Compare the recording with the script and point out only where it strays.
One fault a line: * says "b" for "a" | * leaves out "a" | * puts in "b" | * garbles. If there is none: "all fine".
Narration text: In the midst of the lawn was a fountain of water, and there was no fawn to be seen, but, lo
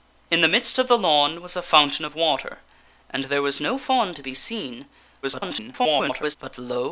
* garbles